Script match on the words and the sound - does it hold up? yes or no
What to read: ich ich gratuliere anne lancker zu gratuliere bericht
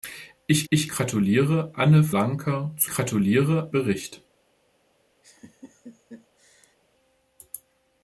no